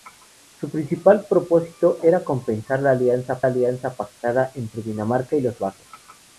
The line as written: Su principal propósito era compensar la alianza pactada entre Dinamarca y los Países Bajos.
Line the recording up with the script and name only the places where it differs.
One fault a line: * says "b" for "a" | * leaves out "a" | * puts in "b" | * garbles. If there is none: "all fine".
* puts in "alianza"
* leaves out "Países"